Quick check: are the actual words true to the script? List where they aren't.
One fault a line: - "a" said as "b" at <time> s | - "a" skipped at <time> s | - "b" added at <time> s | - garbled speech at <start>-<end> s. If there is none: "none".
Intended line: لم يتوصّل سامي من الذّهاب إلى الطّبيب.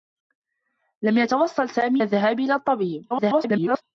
- "من" skipped at 2.0 s
- garbled speech at 3.1-3.8 s